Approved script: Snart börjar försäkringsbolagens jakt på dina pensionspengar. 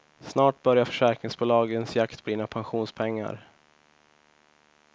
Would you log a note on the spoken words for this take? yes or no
no